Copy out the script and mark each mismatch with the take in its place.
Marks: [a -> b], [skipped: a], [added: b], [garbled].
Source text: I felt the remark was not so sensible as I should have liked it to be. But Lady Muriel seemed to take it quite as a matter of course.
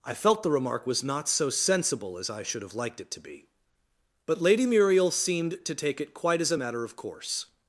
I felt the remark was not so sensible as I should have liked it to be. But Lady Muriel seemed to take it quite as a matter of course.